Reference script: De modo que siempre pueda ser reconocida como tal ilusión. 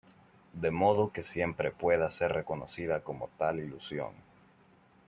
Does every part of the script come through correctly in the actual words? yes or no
yes